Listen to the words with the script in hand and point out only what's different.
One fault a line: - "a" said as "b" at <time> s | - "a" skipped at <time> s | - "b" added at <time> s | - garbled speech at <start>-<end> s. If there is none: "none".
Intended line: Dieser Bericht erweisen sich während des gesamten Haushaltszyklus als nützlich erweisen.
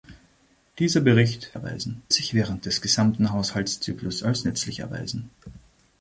none